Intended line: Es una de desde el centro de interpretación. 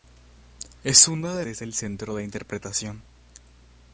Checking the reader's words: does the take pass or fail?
pass